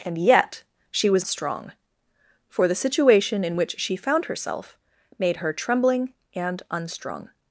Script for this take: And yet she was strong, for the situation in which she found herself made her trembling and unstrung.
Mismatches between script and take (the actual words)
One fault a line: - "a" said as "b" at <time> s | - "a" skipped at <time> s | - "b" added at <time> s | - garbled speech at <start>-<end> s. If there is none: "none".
none